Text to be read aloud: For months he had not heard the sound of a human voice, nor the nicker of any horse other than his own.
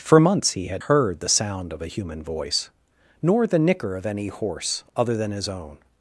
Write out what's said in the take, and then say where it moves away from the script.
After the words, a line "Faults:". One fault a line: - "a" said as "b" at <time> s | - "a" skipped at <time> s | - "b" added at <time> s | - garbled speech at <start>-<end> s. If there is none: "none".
For months he had heard the sound of a human voice, nor the nicker of any horse other than his own.
Faults:
- "not" skipped at 0.8 s